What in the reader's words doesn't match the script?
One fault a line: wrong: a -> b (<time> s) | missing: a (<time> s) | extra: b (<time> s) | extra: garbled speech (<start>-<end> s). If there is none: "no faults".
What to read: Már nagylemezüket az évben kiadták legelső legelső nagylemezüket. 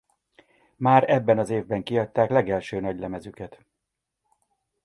wrong: nagylemezüket -> ebben (1.1 s)
missing: legelső (2.8 s)